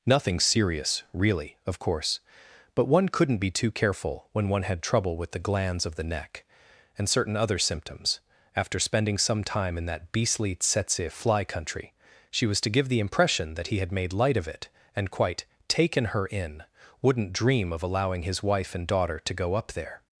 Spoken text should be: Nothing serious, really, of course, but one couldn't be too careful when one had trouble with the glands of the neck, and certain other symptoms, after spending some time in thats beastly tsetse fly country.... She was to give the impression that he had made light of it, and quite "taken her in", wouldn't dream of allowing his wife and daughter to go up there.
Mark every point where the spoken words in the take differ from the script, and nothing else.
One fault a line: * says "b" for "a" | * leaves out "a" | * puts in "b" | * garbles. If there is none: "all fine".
* says "that" for "thats"